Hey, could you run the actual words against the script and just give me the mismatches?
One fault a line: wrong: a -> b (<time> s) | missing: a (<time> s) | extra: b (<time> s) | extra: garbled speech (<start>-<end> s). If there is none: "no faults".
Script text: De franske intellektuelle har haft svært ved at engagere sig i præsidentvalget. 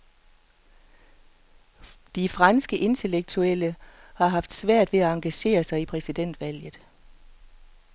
no faults